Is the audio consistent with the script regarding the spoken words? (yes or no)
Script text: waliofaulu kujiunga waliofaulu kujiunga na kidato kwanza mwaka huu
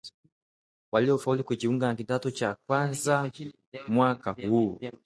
no